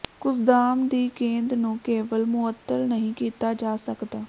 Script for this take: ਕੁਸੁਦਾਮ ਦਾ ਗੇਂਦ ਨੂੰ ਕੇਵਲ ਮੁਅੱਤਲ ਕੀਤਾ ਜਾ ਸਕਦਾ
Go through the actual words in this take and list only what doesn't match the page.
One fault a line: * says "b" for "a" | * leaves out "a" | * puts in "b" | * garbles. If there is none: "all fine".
* says "ਦੀ" for "ਦਾ"
* puts in "ਨਹੀਂ"